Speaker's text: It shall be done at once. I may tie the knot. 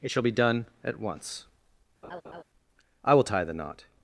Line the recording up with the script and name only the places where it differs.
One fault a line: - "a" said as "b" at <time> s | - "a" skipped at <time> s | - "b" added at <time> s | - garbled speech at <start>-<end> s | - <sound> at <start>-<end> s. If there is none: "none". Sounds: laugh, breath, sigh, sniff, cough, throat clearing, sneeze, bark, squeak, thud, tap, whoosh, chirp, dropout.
- laugh at 2.0-2.4 s
- "may" said as "will" at 3.1 s